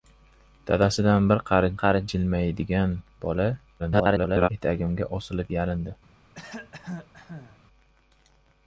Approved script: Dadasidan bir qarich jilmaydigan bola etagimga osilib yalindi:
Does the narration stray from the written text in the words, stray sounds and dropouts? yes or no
yes